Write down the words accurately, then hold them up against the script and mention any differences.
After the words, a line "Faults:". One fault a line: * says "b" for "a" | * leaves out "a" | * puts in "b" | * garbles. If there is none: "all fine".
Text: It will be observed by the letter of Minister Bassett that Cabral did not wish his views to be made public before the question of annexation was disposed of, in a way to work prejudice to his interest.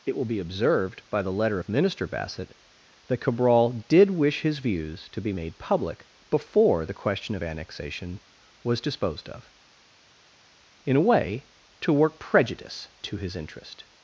It will be observed by the letter of Minister Bassett that Cabral did wish his views to be made public before the question of annexation was disposed of, in a way to work prejudice to his interest.
Faults:
* leaves out "not"